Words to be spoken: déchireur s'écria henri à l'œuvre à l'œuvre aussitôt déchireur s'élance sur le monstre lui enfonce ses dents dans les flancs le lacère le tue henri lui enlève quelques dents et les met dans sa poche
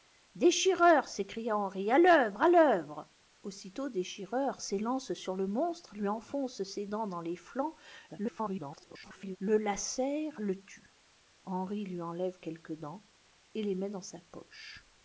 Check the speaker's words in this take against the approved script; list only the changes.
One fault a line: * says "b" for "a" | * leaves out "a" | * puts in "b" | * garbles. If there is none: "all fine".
* garbles